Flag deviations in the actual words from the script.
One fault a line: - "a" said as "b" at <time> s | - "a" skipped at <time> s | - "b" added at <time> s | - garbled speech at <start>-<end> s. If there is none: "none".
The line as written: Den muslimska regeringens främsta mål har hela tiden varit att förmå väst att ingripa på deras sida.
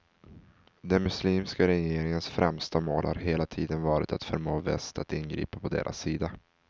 none